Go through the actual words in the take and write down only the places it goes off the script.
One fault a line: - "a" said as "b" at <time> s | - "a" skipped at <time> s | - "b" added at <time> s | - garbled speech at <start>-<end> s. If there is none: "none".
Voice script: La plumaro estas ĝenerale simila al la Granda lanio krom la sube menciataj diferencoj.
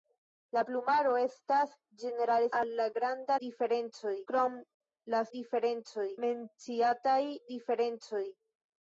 - "simila" skipped at 2.5 s
- "lanio" said as "diferencoj" at 3.5 s
- "sube" said as "diferencoj" at 5.4 s